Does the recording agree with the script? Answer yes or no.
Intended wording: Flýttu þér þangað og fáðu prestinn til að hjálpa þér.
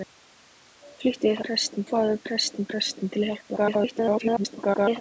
no